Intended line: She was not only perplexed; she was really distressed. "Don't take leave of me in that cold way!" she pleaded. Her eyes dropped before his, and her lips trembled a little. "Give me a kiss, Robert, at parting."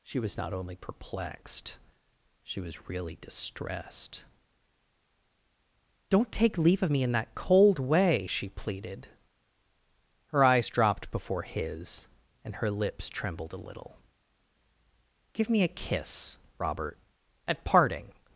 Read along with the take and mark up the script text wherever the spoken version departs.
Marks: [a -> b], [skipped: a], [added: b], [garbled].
She was not only perplexed; she was really distressed. "Don't take leave of me in that cold way!" she pleaded. Her eyes dropped before his, and her lips trembled a little. "Give me a kiss, Robert, at parting."